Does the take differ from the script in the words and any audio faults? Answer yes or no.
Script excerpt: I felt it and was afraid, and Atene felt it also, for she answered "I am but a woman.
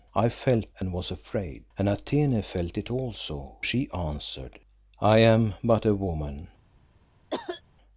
yes